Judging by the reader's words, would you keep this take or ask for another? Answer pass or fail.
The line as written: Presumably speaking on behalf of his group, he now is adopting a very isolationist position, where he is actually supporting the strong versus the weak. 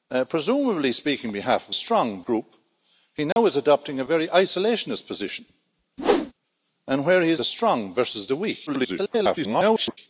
fail